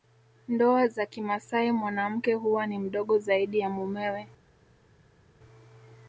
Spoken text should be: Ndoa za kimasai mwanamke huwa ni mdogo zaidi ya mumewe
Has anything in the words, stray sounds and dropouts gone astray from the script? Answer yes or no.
no